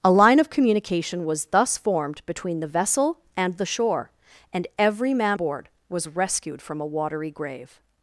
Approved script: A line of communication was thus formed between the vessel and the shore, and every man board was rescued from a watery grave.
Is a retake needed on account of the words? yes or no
no